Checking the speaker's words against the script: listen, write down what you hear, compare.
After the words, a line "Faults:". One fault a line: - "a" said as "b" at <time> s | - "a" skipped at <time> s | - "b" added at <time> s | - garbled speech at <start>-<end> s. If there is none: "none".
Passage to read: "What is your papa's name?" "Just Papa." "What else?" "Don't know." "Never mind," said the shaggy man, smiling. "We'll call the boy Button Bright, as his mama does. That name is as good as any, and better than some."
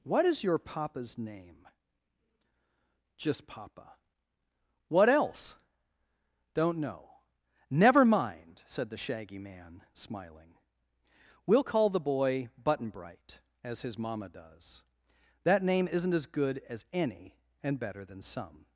"What is your papa's name?" "Just Papa." "What else?" "Don't know." "Never mind," said the shaggy man, smiling. "We'll call the boy Button Bright, as his mama does. That name isn't as good as any, and better than some."
Faults:
- "is" said as "isn't" at 15.9 s